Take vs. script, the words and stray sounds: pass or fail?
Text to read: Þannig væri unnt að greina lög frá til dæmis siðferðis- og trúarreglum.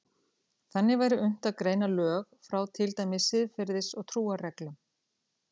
pass